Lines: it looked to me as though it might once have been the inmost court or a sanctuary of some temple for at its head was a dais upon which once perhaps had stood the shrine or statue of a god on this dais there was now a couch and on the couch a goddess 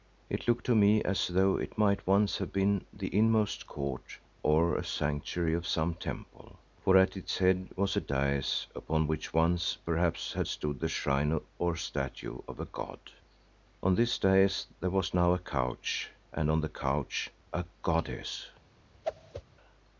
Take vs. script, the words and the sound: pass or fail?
fail